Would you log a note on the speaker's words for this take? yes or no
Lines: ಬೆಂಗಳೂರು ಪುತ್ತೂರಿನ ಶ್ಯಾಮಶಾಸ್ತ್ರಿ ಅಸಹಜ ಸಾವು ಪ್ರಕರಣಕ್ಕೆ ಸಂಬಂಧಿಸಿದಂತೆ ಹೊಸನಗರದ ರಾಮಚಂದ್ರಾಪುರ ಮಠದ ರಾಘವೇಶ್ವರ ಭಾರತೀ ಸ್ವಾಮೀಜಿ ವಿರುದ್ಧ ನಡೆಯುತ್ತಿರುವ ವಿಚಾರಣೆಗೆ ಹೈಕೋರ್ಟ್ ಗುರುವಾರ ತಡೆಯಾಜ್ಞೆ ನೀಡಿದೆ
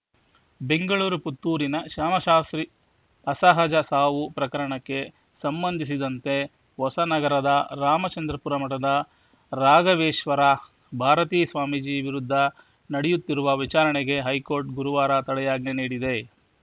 no